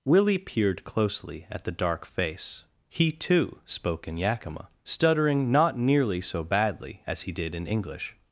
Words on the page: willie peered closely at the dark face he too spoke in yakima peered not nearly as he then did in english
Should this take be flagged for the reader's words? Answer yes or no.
yes